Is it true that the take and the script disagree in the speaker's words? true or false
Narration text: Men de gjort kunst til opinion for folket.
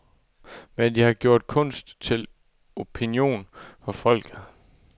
true